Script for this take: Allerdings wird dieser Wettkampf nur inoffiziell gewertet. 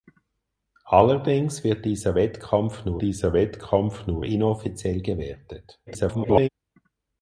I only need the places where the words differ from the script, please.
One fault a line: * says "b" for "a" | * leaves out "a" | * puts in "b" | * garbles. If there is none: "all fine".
* puts in "dieser Wettkampf nur"
* garbles